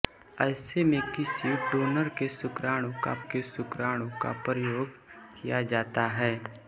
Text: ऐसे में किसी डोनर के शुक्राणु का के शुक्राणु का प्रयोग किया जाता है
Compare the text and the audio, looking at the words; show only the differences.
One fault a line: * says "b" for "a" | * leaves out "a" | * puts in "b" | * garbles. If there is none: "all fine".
all fine